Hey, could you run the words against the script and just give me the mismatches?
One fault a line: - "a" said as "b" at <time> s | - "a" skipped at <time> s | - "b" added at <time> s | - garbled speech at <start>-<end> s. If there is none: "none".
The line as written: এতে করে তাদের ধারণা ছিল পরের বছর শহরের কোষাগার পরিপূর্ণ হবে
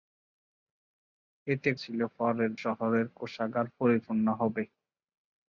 - "করে তাদের ধারণা" skipped at 1.7 s
- "বছর" skipped at 2.5 s